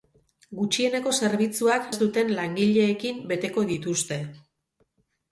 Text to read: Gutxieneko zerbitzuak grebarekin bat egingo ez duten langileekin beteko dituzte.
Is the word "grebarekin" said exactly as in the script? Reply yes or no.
no